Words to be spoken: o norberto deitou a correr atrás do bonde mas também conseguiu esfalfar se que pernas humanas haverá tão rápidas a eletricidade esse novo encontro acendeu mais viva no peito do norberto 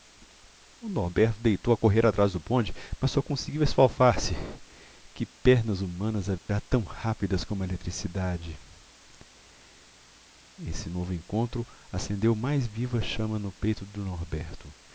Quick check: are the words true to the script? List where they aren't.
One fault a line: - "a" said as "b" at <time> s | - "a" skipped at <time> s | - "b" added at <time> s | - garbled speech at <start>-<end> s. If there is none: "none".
- "também" said as "só" at 3.1 s
- "como" added at 7.5 s
- "chama" added at 13.0 s